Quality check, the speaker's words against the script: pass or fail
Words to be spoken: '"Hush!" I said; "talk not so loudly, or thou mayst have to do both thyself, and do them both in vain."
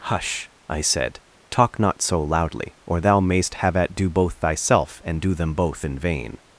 fail